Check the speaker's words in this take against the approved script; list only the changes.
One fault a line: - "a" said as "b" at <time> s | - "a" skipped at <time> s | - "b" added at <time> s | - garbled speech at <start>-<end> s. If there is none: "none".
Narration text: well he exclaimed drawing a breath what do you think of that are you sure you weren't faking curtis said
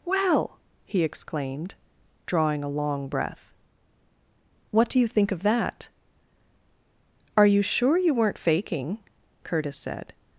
- "long" added at 2.7 s